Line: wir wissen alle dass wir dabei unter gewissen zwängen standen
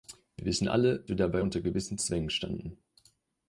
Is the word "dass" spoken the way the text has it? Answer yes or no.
no